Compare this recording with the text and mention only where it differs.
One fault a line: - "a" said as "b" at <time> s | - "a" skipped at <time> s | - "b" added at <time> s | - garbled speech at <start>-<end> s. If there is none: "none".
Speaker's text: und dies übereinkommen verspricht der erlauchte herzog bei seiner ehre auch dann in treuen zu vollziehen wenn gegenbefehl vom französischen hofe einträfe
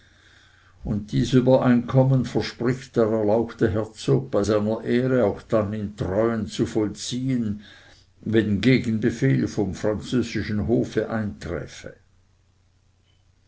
none